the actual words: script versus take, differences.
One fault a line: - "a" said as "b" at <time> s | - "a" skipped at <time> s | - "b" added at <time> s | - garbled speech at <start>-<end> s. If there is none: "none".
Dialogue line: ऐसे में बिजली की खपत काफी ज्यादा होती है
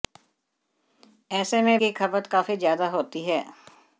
- "बिजली" skipped at 1.8 s